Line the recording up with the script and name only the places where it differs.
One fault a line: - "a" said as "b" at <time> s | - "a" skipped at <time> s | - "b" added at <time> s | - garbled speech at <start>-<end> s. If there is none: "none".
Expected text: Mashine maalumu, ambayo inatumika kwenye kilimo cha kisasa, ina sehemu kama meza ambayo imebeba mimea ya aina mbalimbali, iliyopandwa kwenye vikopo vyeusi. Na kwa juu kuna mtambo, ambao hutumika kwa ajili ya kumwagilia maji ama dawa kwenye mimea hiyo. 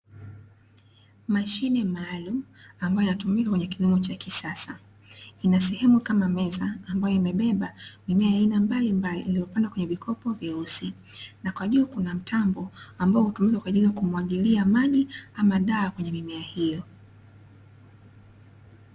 none